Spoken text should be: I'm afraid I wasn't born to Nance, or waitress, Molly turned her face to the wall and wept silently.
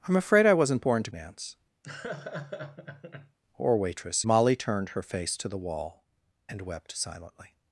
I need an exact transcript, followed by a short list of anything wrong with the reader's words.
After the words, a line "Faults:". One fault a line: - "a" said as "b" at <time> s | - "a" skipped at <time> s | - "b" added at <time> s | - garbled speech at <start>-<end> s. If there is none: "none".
I'm afraid I wasn't born to Nance, or waitress, Molly turned her face to the wall and wept silently.
Faults:
none